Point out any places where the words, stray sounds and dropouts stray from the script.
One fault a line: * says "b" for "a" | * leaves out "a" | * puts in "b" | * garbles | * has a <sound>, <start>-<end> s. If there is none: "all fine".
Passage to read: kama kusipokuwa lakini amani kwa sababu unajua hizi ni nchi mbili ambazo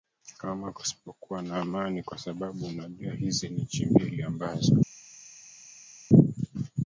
* says "na" for "lakini"